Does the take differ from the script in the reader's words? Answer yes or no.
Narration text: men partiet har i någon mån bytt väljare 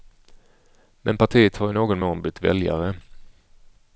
no